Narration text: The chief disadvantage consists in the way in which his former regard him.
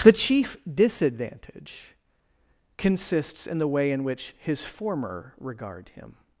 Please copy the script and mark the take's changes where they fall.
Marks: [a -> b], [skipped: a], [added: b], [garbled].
The chief disadvantage consists in the way in which his former regard him.